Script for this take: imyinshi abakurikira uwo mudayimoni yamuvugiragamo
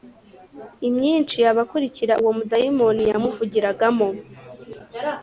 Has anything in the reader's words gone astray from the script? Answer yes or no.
no